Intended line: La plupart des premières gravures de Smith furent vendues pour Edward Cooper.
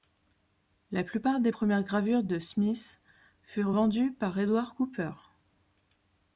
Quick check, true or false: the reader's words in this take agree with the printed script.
false